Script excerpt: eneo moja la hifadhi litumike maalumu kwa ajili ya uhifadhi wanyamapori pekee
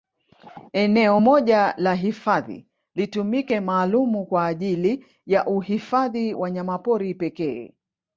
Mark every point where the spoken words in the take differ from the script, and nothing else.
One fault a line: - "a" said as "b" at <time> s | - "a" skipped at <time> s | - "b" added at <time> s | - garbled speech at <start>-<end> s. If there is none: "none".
none